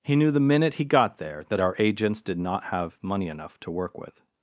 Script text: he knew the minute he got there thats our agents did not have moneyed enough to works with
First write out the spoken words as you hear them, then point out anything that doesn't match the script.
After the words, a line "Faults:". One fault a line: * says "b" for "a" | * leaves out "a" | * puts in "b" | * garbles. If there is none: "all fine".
he knew the minute he got there that our agents did not have money enough to work with
Faults:
* says "that" for "thats"
* says "money" for "moneyed"
* says "work" for "works"